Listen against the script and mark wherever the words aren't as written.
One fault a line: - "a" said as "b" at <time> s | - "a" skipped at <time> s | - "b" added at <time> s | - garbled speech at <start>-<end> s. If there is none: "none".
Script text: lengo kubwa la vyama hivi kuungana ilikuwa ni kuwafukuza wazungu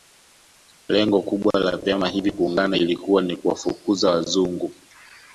none